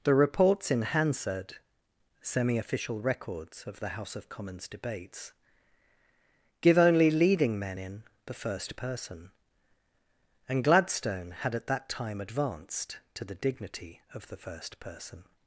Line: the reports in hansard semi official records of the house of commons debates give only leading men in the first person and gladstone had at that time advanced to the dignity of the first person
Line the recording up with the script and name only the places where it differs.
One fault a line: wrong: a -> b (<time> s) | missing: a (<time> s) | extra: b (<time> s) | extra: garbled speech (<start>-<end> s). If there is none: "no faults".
no faults